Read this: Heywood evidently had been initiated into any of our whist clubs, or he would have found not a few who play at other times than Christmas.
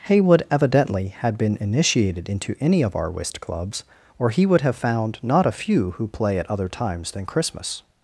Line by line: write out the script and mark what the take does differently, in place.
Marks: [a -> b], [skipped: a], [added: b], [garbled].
Heywood evidently had been initiated into any of our whist clubs, or he would have found not a few who play at other times than Christmas.